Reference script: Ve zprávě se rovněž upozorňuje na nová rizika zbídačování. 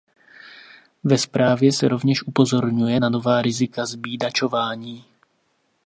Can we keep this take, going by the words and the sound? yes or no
yes